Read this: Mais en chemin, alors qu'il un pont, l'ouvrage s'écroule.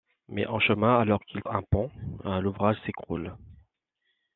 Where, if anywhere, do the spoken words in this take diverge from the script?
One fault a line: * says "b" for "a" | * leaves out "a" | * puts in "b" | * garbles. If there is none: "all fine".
all fine